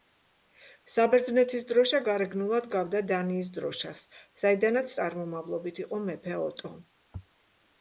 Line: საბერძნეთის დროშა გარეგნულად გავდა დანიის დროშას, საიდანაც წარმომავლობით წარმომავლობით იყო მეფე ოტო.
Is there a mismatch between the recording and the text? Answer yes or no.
yes